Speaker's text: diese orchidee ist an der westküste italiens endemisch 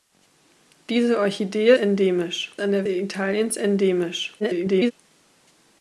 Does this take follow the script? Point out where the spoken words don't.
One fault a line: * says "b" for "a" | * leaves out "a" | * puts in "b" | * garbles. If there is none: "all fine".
* says "endemisch" for "ist"
* leaves out "westküste"
* garbles